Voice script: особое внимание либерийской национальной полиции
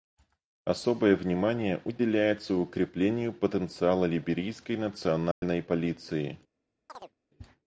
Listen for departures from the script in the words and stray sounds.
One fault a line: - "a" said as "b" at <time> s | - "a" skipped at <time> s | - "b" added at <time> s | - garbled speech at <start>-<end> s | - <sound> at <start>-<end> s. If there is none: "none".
- "уделяется укреплению потенциала" added at 1.9 s
- dropout at 5.3-5.4 s
- chirp at 6.9-7.1 s